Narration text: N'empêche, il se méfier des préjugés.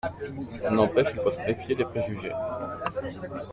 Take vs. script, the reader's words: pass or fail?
fail